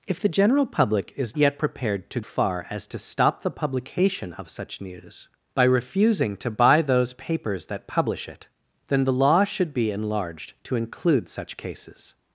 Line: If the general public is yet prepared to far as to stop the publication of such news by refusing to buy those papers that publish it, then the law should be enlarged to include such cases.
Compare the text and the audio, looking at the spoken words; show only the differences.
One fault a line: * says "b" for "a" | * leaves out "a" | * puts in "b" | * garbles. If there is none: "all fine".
all fine